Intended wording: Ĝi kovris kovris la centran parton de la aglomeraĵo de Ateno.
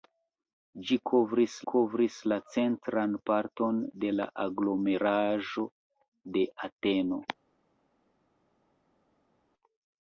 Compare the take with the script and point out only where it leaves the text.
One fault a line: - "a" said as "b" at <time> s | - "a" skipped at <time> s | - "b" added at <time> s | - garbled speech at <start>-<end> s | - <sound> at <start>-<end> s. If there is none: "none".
none